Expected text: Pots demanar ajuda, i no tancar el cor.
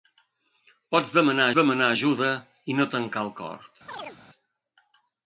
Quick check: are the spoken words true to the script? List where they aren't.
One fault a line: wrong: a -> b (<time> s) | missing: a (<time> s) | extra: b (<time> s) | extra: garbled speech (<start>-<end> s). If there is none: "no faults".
extra: demanar (1.6 s)